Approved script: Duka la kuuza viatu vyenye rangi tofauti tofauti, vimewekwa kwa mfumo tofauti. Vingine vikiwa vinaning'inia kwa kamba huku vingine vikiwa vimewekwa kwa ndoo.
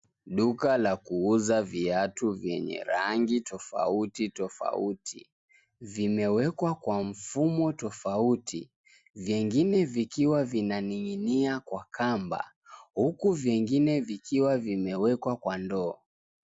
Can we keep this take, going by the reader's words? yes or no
yes